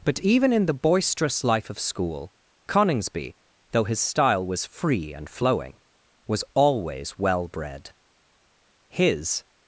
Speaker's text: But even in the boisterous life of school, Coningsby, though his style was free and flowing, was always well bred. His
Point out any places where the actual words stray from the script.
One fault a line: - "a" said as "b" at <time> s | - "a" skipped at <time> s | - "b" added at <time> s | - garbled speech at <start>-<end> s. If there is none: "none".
none